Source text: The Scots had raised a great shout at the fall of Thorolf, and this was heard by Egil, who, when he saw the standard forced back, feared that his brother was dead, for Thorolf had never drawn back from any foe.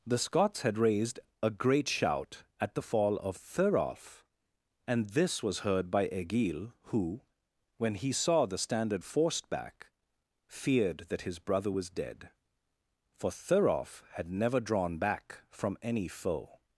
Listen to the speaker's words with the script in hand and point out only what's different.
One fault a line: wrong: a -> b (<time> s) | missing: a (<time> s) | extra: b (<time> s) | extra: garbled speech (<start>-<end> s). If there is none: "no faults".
no faults